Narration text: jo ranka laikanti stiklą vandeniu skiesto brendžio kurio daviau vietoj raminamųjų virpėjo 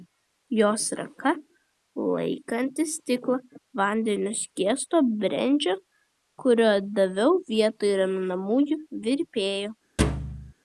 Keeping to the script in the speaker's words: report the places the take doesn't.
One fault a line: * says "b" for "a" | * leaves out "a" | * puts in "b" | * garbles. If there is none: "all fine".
* says "jos" for "jo"